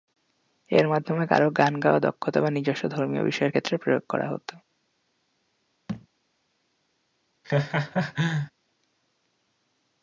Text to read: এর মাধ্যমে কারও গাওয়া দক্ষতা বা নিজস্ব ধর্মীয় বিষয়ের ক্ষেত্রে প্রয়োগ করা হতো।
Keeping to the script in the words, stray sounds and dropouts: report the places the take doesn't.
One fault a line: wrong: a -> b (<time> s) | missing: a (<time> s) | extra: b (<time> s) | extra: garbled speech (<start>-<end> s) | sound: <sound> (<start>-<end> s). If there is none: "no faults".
extra: গান (1.5 s)
sound: thud (5.9-6.1 s)
sound: laugh (7.4-8.5 s)